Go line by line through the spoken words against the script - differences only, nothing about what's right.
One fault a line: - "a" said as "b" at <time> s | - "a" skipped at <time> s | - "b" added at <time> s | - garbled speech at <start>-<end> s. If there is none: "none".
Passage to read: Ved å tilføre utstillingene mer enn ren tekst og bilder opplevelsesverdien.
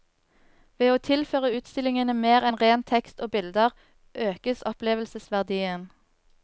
- "økes" added at 4.3 s